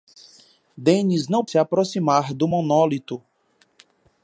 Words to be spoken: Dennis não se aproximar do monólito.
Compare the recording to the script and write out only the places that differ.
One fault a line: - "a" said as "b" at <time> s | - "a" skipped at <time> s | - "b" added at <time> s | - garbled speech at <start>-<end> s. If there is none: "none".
none